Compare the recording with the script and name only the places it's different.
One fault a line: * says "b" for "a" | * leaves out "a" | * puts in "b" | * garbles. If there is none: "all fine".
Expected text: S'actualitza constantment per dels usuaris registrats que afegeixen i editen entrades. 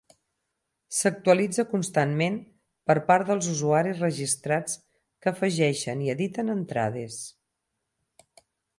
* puts in "part"